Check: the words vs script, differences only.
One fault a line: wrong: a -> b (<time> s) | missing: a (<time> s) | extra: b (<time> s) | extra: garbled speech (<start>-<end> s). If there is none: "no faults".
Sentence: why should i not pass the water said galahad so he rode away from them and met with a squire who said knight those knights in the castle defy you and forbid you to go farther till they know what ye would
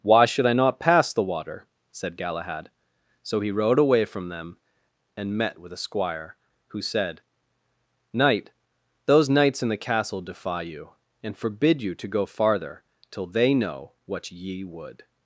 no faults